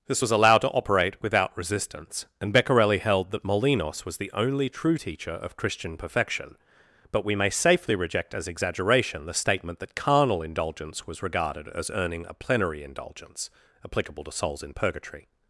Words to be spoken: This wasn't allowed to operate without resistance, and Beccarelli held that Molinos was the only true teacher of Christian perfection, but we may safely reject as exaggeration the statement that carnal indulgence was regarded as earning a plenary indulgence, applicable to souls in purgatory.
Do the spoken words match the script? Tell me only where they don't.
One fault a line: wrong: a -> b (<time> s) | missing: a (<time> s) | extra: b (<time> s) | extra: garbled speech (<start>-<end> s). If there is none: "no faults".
wrong: wasn't -> was (0.2 s)